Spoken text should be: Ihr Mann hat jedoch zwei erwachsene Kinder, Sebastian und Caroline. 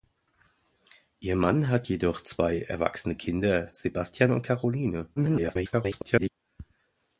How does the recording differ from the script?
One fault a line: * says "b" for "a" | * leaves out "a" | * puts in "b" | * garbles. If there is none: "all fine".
* garbles